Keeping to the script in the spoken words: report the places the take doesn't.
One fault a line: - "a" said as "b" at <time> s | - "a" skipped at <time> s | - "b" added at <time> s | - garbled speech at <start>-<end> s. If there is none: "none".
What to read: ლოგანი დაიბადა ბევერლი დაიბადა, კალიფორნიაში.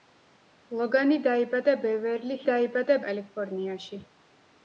none